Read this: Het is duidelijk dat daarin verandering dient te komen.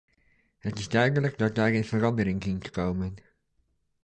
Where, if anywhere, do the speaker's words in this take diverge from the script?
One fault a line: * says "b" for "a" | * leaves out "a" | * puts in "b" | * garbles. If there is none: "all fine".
all fine